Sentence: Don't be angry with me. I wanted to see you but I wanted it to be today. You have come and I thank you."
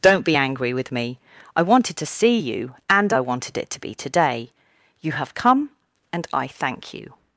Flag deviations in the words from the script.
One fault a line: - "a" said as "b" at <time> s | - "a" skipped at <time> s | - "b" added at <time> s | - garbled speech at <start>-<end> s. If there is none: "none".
- "but" said as "and" at 2.9 s